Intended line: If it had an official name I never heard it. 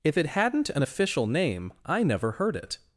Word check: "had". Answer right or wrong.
wrong